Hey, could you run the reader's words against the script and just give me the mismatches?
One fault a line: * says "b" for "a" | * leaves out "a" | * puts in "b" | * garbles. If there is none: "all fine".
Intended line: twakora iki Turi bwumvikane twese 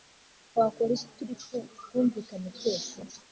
all fine